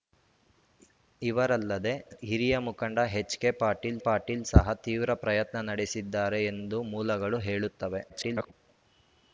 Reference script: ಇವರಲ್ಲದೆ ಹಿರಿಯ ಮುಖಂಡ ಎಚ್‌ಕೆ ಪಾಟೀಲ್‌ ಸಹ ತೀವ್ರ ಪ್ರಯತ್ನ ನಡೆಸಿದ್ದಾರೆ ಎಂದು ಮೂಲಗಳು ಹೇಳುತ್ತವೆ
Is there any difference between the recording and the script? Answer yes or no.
yes